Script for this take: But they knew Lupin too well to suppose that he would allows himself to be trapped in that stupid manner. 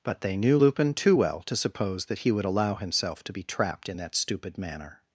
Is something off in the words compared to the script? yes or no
yes